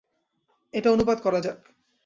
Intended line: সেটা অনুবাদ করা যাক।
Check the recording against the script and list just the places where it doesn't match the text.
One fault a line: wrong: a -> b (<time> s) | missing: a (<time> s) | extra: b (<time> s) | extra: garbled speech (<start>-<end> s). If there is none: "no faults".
wrong: সেটা -> এটা (0.7 s)